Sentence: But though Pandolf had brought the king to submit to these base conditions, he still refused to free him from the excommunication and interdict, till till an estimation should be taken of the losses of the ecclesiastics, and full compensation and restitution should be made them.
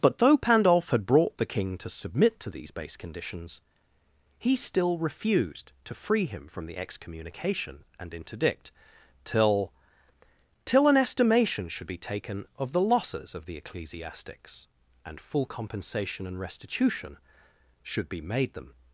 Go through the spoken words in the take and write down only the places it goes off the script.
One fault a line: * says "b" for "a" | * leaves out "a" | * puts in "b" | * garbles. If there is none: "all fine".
all fine